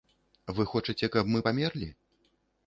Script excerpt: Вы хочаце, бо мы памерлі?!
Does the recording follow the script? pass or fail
fail